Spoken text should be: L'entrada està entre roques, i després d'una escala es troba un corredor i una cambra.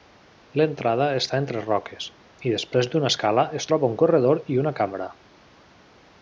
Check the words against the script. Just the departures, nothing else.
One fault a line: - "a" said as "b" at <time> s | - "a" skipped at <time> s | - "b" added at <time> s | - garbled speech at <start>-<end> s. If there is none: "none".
none